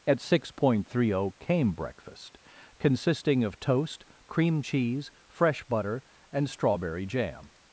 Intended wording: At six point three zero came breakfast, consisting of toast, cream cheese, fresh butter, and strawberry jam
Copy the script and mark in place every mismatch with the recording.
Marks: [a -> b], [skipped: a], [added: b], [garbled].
At six point three zero came breakfast, consisting of toast, cream cheese, fresh butter, and strawberry jam